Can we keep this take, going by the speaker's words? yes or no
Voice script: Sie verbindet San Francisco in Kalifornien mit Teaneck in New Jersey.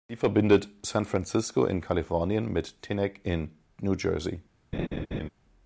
yes